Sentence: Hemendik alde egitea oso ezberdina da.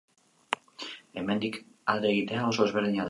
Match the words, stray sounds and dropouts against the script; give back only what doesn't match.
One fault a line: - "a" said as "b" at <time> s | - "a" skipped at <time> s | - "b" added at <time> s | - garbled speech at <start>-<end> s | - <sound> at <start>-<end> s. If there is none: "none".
none